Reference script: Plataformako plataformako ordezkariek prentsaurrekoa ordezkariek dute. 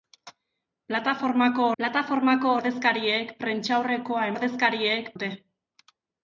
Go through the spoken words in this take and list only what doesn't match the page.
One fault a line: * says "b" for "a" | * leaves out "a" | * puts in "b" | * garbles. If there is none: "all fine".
all fine